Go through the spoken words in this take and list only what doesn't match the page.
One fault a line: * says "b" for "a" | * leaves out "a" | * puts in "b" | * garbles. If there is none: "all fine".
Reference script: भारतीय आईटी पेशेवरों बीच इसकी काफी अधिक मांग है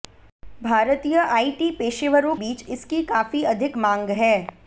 all fine